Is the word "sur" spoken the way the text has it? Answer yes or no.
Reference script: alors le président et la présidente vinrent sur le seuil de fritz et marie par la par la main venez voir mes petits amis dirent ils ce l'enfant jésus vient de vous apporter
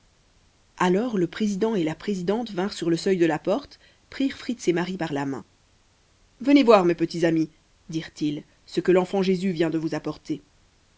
yes